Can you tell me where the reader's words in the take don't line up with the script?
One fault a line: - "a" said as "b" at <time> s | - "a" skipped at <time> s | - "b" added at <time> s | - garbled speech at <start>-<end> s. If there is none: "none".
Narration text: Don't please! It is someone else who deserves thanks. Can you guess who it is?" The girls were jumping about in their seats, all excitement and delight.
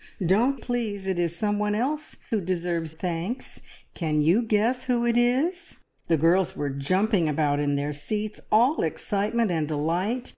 none